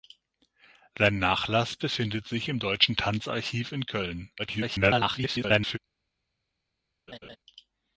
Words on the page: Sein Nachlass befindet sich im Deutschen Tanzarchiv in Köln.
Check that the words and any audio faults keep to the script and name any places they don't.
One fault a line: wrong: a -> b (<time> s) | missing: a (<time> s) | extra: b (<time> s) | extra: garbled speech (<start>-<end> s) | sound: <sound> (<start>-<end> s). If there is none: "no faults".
extra: garbled speech (4.4-5.8 s)
sound: laugh (7.1-7.4 s)